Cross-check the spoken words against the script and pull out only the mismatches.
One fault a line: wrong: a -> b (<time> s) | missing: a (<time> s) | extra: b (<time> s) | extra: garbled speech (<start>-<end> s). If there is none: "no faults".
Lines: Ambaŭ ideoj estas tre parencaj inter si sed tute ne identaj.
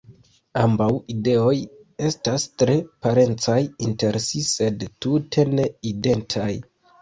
no faults